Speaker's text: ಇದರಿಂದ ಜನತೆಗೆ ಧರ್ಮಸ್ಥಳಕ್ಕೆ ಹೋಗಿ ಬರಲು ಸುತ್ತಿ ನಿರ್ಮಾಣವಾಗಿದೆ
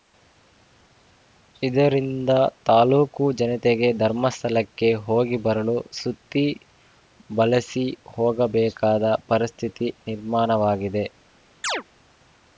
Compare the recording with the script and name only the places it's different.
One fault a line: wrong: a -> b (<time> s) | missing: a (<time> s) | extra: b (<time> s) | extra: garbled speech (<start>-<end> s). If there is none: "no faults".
extra: ತಾಲೂಕು (2.6 s)
extra: ಬಳಸಿ ಹೋಗಬೇಕಾದ ಪರಿಸ್ಥಿತಿ (7.3 s)